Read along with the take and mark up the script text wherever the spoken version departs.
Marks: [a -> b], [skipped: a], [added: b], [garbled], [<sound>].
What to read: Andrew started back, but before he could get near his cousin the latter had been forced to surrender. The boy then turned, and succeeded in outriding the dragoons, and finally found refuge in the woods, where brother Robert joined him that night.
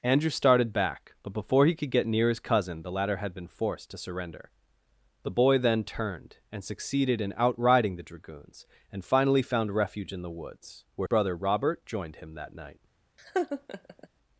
Andrew started back, but before he could get near his cousin the latter had been forced to surrender. The boy then turned, and succeeded in outriding the dragoons, and finally found refuge in the woods, where brother Robert joined him that night. [laugh]